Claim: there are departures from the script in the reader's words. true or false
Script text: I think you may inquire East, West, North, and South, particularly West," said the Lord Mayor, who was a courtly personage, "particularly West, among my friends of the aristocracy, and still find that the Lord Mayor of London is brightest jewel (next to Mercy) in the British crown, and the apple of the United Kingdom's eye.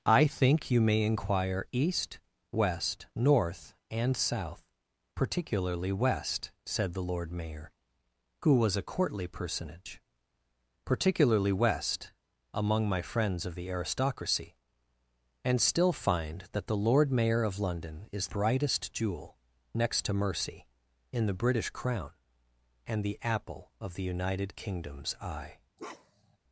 false